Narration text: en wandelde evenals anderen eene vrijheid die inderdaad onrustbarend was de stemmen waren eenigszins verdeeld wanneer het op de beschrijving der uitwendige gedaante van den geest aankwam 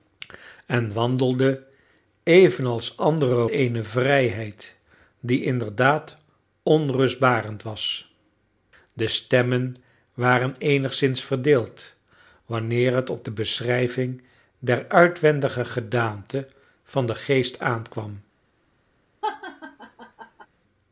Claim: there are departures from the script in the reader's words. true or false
false